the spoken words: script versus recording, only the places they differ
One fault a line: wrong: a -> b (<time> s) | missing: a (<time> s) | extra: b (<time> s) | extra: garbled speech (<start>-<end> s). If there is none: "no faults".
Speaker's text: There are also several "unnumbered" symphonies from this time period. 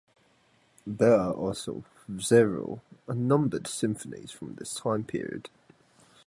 no faults